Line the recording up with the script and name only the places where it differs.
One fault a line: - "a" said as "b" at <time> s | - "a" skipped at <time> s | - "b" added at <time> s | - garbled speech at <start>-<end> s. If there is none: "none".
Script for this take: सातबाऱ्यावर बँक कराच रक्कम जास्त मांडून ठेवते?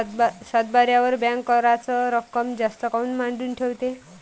- "काऊन" added at 2.9 s